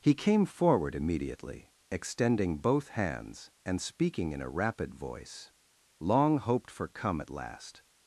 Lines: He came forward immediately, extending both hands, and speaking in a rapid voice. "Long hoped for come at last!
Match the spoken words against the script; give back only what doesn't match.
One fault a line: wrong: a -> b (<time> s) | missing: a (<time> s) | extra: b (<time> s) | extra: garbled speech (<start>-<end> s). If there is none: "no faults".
no faults